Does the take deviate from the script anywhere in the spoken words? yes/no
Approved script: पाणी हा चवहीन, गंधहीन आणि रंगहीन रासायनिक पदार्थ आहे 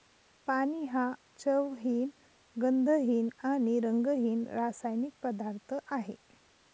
no